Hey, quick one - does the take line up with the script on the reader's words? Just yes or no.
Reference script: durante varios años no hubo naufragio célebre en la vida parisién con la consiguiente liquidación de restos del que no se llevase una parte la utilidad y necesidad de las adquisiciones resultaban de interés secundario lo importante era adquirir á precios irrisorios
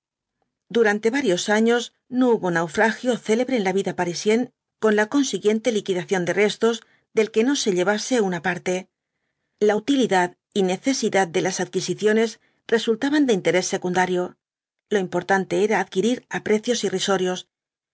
yes